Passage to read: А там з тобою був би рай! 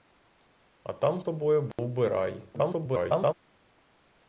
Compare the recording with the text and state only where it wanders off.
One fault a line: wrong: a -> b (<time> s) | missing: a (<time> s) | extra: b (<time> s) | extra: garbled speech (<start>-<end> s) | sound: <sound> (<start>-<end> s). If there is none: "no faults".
missing: з (1.2 s)
sound: dropout (1.7-1.8 s)
extra: garbled speech (2.5-3.3 s)